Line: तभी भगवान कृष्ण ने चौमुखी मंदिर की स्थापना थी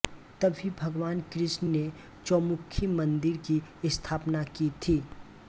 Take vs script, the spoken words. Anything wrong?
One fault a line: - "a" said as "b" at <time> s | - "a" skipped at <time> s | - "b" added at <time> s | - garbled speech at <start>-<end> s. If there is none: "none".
- "की" added at 4.5 s